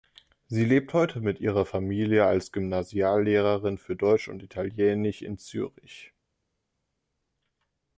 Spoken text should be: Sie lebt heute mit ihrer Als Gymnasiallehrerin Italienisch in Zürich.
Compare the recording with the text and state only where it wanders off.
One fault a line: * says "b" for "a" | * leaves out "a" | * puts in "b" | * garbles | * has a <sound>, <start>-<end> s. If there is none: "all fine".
* puts in "Familie"
* puts in "für Deutsch und"